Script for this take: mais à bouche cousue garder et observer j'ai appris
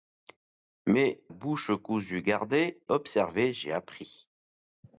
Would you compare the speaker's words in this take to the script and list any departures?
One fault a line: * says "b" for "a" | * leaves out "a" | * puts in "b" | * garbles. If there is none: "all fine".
* leaves out "à"
* leaves out "et"